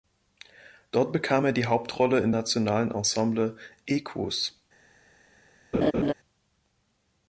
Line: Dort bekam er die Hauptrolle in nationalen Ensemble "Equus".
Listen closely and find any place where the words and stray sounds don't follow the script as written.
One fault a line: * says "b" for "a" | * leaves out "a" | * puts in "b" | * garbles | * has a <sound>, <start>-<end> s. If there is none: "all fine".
* has a laugh, 5.7-6.1 s